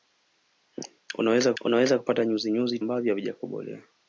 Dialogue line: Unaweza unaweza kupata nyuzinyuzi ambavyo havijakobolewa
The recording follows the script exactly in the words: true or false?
true